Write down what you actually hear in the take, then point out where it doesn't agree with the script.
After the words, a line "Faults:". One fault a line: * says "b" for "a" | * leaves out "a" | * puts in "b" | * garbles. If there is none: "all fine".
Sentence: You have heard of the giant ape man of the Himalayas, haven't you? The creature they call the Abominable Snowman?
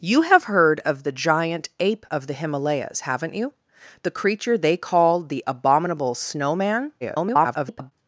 You have heard of the giant ape of the Himalayas, haven't you? The creature they call the Abominable Snowman? [garbled]
Faults:
* leaves out "man"
* garbles